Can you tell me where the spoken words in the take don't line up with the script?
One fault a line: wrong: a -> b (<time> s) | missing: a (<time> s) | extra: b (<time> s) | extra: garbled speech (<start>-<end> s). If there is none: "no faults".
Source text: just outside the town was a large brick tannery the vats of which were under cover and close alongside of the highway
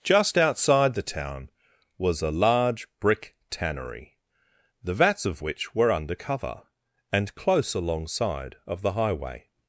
no faults